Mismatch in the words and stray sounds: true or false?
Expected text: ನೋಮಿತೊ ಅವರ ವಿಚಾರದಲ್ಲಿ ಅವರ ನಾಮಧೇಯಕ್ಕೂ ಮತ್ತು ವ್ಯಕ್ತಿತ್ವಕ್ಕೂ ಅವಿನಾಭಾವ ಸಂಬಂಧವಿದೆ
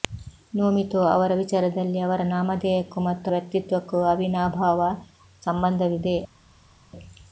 false